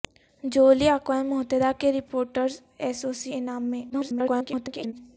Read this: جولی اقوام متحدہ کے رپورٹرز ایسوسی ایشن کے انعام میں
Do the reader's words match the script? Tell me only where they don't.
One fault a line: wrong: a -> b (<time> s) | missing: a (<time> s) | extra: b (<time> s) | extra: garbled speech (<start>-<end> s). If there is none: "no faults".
missing: ایشن کے (3.3 s)
extra: garbled speech (3.9-4.9 s)